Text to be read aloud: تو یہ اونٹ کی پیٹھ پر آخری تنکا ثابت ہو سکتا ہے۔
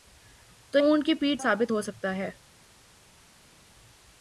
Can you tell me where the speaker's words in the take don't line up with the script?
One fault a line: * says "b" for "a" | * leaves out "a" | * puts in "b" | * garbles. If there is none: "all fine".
* leaves out "یہ"
* leaves out "پر آخری تنکا"